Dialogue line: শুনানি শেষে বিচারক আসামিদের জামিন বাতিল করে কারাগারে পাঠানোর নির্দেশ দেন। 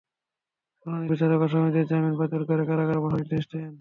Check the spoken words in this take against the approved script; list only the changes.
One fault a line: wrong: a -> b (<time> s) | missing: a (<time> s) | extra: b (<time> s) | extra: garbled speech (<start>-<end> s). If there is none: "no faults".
missing: শেষে (1.1 s)